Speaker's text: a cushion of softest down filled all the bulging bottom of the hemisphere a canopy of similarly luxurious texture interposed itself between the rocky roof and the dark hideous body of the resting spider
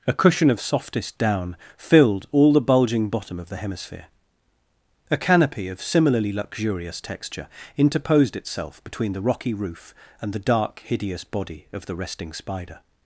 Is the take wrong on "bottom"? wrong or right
right